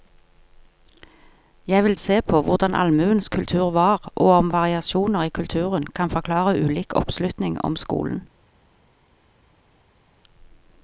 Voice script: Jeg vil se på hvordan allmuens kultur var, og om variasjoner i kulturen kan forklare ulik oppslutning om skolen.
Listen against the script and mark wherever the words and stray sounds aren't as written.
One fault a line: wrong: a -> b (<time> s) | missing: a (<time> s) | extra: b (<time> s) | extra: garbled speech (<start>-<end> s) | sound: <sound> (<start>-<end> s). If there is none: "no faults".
no faults